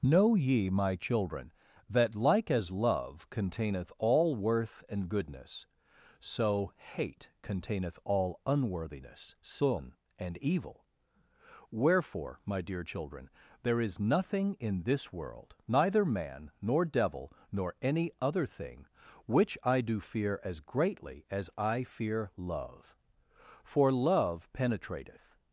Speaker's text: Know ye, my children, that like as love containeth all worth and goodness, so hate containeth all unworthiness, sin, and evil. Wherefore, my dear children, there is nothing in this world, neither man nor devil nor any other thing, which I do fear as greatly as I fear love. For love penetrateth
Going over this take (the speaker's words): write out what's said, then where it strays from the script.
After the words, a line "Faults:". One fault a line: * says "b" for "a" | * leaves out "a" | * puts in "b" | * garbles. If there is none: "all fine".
Know ye, my children, that like as love containeth all worth and goodness, so hate containeth all unworthiness, sin, and evil. Wherefore, my dear children, there is nothing in this world, neither man nor devil nor any other thing, which I do fear as greatly as I fear love. For love penetrateth
Faults:
all fine